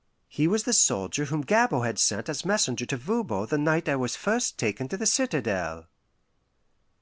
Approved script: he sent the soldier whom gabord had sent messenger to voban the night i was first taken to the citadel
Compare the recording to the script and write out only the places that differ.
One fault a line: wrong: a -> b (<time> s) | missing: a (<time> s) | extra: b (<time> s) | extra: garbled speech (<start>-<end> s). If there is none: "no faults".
wrong: sent -> was (0.5 s)
extra: as (2.3 s)